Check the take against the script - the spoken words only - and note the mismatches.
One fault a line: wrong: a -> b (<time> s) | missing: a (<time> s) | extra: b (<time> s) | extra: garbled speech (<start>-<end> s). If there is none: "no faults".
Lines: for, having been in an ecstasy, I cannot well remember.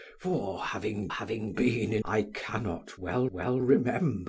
extra: having (1.1 s)
missing: an ecstasy (2.0 s)
extra: well (3.3 s)